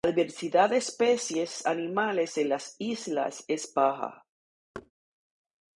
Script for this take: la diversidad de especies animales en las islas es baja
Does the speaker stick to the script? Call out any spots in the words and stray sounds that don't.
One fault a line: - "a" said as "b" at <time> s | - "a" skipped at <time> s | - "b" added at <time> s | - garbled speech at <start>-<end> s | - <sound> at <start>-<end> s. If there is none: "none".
- thud at 4.7-4.9 s